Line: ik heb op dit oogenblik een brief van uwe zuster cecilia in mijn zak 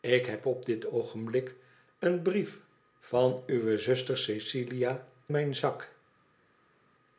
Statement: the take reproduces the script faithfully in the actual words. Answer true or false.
false